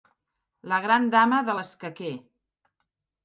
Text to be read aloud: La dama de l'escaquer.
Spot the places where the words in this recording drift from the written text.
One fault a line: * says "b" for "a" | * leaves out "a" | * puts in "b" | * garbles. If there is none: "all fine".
* puts in "gran"